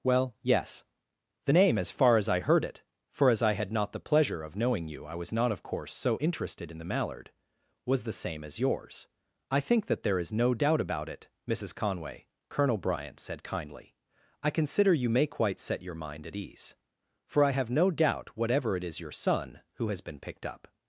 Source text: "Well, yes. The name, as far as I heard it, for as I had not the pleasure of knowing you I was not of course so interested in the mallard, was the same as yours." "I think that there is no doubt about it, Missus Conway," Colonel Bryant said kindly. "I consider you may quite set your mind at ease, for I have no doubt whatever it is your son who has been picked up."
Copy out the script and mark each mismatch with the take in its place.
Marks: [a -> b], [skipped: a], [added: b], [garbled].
"Well, yes. The name, as far as I heard it, for as I had not the pleasure of knowing you I was not of course so interested in the mallard, was the same as yours." "I think that there is no doubt about it, Missus Conway," Colonel Bryant said kindly. "I consider you may quite set your mind at ease, for I have no doubt whatever it is your son who has been picked up."